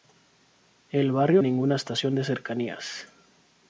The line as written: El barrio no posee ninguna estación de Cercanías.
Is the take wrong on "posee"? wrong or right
wrong